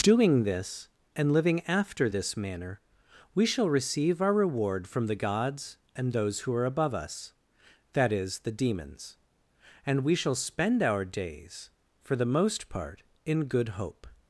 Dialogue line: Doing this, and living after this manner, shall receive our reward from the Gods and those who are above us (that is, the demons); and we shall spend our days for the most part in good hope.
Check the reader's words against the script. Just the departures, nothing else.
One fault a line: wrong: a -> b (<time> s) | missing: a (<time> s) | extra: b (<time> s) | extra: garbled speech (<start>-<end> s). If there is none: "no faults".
extra: we (3.4 s)